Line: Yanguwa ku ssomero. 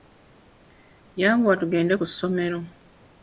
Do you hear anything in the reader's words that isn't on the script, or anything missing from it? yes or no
yes